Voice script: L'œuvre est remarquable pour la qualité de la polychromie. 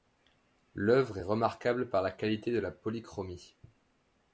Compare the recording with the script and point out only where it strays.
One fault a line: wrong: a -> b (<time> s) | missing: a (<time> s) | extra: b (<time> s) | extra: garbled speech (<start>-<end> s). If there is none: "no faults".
wrong: pour -> par (1.9 s)